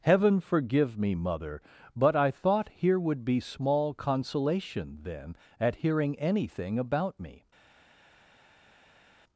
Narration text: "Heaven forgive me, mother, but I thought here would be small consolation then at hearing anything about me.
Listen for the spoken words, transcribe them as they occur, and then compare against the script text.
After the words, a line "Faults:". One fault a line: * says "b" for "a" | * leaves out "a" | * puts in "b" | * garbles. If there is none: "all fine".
"Heaven forgive me, mother, but I thought here would be small consolation then at hearing anything about me.
Faults:
all fine